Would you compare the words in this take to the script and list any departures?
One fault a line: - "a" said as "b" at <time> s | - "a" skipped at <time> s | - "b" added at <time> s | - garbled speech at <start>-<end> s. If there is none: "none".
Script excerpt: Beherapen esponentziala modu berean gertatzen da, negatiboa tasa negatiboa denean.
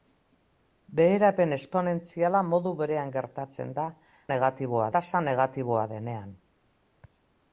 none